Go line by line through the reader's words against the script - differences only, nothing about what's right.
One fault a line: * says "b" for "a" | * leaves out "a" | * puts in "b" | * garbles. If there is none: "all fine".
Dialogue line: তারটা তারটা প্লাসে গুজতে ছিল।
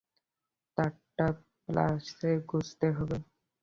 * leaves out "তারটা"
* says "হবে" for "ছিল"